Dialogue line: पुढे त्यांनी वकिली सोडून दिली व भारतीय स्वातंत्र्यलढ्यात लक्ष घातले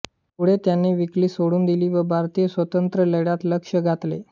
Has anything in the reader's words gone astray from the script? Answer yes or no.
no